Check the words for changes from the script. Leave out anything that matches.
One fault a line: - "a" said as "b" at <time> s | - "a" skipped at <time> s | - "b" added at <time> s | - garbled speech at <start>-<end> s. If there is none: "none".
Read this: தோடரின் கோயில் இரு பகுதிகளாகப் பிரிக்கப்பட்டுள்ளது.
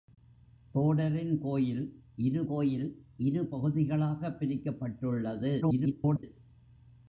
- "கோயில் இரு" added at 2.4 s
- garbled speech at 5.6-6.2 s